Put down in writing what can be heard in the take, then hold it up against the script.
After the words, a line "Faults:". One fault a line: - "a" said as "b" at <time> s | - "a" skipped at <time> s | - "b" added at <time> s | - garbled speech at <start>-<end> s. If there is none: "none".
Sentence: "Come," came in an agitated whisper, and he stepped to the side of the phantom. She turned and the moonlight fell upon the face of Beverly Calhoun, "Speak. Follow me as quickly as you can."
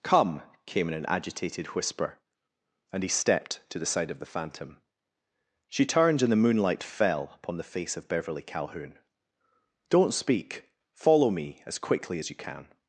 "Come," came in an agitated whisper, and he stepped to the side of the phantom. She turned and the moonlight fell upon the face of Beverly Calhoun, "Don't speak. Follow me as quickly as you can."
Faults:
- "Don't" added at 9.9 s